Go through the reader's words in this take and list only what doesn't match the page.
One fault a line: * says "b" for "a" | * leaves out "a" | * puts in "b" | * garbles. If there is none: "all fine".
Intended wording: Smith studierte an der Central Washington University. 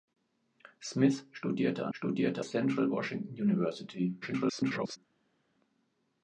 * says "studierte" for "der"
* garbles